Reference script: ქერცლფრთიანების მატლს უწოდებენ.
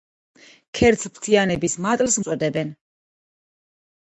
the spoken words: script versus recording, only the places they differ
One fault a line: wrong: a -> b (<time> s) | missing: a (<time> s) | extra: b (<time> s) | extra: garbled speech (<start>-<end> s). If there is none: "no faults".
no faults